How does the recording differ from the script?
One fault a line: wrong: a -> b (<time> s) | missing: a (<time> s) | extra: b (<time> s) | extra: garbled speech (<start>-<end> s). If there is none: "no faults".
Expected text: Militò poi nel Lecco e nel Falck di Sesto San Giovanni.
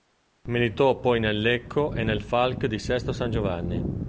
no faults